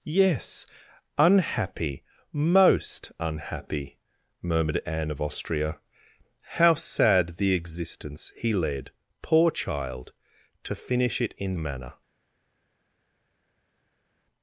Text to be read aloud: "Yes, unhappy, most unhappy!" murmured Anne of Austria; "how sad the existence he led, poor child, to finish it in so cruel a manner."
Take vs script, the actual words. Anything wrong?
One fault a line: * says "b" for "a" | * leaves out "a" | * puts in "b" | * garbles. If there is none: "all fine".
* leaves out "so cruel a"